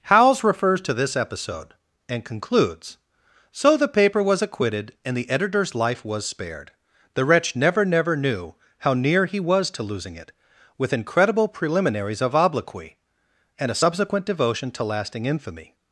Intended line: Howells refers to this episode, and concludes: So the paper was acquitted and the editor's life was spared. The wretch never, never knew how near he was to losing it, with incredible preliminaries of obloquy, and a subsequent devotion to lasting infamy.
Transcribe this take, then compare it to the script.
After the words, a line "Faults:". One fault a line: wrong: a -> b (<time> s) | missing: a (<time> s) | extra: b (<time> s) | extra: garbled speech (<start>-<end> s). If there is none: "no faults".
Howells refers to this episode, and concludes: So the paper was acquitted and the editor's life was spared. The wretch never, never knew how near he was to losing it, with incredible preliminaries of obloquy, and a subsequent devotion to lasting infamy.
Faults:
no faults